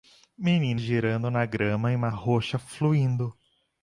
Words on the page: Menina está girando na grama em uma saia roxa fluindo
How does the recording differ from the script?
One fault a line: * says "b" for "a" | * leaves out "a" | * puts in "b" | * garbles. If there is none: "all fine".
* leaves out "está"
* leaves out "saia"